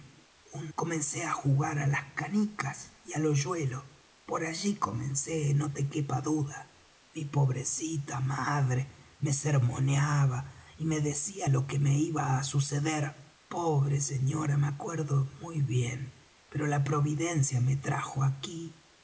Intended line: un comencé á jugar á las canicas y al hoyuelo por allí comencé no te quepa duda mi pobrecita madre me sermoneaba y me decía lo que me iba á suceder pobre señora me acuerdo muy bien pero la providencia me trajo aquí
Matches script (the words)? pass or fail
pass